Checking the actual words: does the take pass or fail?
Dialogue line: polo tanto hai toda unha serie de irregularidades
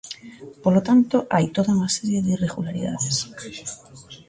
pass